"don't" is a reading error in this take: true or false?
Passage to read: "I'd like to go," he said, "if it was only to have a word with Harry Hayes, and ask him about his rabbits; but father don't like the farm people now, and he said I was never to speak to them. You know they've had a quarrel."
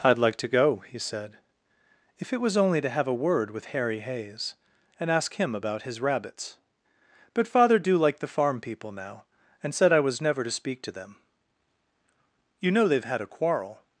true